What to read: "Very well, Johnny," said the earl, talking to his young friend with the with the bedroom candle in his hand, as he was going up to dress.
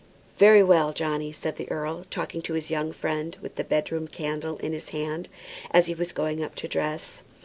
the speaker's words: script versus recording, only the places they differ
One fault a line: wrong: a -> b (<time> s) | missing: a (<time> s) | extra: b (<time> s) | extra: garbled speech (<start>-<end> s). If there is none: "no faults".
missing: with the (3.7 s)